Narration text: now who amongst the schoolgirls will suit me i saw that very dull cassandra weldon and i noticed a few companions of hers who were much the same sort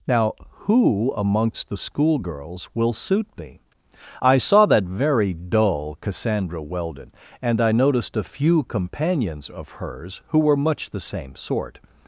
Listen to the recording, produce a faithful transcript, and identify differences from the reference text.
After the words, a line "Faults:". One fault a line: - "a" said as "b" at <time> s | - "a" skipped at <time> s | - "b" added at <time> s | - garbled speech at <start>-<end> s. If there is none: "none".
now who amongst the schoolgirls will suit me i saw that very dull cassandra weldon and i noticed a few companions of hers who were much the same sort
Faults:
none